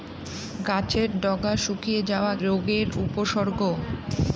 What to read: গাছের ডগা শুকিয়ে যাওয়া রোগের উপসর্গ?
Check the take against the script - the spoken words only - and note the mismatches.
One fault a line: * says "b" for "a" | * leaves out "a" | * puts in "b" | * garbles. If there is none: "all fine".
all fine